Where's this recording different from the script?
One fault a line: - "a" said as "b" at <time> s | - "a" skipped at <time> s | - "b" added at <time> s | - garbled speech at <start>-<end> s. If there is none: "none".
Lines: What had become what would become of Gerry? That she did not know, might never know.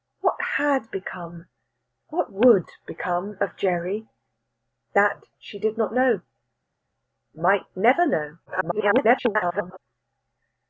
- garbled speech at 8.5-9.8 s